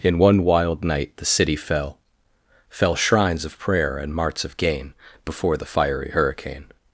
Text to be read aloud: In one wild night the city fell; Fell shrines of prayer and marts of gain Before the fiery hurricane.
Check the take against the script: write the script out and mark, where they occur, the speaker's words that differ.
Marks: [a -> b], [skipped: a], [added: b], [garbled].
In one wild night the city fell; Fell shrines of prayer and marts of gain Before the fiery hurricane.